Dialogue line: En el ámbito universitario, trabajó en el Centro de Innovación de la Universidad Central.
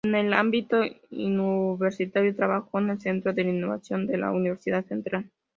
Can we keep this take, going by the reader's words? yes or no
yes